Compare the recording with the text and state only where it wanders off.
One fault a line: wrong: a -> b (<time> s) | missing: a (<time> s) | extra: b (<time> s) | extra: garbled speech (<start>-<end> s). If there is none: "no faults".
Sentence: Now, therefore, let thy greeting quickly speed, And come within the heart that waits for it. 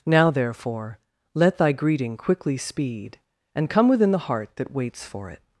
no faults